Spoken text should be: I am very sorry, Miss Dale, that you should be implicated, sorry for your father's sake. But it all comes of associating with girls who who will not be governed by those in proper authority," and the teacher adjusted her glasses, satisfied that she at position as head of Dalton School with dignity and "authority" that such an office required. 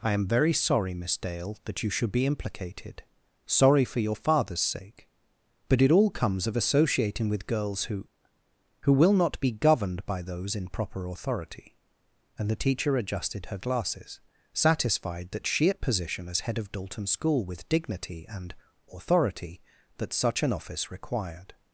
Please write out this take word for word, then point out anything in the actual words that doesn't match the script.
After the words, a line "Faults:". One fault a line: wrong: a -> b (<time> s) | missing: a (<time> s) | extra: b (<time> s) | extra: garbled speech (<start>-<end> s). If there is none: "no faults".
I am very sorry, Miss Dale, that you should be implicated, sorry for your father's sake. But it all comes of associating with girls who who will not be governed by those in proper authority," and the teacher adjusted her glasses, satisfied that she at position as head of Dalton School with dignity and "authority" that such an office required.
Faults:
no faults